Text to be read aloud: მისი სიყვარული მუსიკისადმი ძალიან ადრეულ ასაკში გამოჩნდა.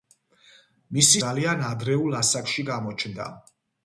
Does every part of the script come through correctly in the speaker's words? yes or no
no